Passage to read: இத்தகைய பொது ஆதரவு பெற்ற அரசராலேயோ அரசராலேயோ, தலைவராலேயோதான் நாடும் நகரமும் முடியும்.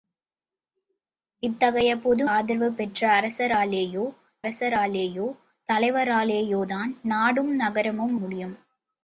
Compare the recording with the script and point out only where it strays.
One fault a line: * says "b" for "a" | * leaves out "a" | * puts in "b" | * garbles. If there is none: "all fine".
all fine